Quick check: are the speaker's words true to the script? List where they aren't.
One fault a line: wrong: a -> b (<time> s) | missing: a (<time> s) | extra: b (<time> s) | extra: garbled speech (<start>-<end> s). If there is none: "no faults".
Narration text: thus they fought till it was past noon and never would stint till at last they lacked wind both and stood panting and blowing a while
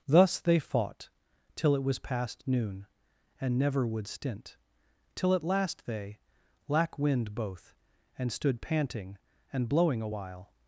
wrong: lacked -> lack (6.7 s)